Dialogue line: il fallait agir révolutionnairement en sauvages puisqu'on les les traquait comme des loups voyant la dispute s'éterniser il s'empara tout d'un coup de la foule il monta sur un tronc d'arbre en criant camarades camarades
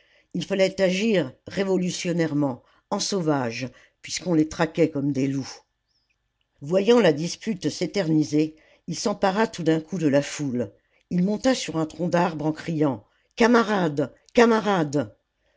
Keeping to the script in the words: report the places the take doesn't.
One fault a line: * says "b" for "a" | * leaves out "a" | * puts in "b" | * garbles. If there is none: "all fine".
* leaves out "les"